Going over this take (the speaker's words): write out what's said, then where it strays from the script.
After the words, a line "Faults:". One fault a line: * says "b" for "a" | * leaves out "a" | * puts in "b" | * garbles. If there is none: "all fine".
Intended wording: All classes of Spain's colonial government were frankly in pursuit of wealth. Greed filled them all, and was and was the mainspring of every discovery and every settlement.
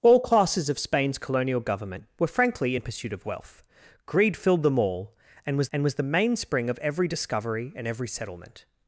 All classes of Spain's colonial government were frankly in pursuit of wealth. Greed filled them all, and was and was the mainspring of every discovery and every settlement.
Faults:
all fine